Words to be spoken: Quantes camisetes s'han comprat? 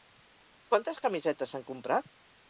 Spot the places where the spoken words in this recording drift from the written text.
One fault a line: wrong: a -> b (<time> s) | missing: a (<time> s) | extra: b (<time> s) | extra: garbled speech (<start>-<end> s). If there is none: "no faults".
no faults